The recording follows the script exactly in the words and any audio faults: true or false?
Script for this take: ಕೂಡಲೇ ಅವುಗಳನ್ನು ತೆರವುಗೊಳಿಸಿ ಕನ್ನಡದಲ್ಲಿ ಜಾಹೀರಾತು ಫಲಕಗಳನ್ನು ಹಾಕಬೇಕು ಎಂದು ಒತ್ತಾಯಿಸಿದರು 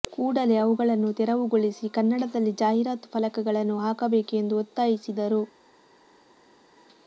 true